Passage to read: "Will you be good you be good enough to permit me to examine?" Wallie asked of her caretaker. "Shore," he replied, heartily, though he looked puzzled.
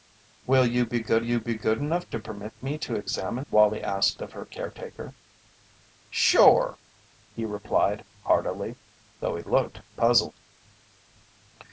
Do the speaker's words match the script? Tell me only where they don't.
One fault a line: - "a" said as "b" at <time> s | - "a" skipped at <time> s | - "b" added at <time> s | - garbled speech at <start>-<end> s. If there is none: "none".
none